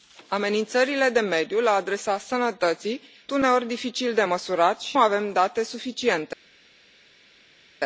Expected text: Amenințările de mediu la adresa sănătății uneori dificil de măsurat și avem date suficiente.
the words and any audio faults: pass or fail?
pass